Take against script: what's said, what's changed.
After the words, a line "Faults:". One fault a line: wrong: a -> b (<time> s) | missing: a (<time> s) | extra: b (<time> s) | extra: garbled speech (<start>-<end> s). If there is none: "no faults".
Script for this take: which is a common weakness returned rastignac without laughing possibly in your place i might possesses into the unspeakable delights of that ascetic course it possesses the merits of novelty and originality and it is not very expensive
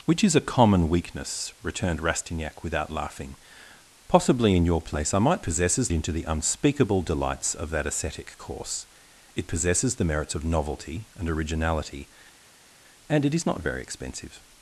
which is a common weakness returned rastignac without laughing possibly in your place i might possesses into the unspeakable delights of that ascetic course it possesses the merits of novelty and originality and it is not very expensive
Faults:
no faults